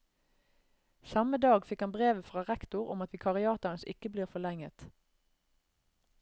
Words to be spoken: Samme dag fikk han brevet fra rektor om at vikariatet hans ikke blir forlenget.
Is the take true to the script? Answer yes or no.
yes